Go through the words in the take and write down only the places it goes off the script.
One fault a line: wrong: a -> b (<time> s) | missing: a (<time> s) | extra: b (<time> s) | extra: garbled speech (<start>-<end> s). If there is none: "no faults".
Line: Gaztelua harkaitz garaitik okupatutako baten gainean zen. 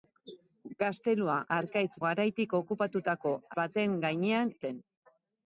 no faults